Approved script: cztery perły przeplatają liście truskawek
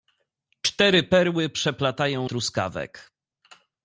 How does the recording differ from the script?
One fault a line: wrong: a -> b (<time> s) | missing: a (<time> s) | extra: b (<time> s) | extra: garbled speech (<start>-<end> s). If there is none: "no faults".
missing: liście (2.3 s)